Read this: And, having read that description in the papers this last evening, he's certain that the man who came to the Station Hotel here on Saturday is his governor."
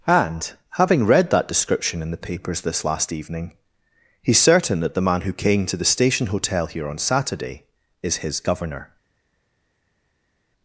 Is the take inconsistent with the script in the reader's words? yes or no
no